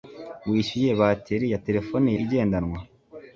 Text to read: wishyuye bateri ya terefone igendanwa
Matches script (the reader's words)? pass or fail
pass